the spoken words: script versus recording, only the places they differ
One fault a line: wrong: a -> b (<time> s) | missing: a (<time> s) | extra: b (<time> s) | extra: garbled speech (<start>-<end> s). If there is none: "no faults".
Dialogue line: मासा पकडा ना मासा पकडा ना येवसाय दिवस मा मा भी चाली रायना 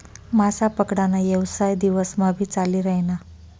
missing: मासा पकडा ना (1.2 s)
missing: मा (2.3 s)